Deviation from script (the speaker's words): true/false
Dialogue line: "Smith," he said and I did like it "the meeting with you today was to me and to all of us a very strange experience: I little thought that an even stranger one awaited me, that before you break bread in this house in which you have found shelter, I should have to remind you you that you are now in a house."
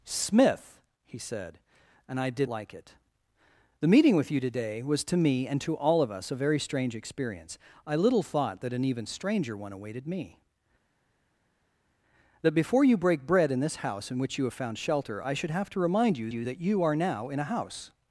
false